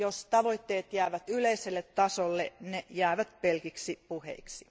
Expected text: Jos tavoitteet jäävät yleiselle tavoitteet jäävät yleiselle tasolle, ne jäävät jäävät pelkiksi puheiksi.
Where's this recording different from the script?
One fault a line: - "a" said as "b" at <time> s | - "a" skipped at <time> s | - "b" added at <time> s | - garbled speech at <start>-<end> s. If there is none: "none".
- "tavoitteet jäävät yleiselle" skipped at 1.8 s
- "jäävät" skipped at 3.4 s